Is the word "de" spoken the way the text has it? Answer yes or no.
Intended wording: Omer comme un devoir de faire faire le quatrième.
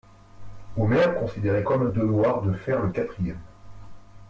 yes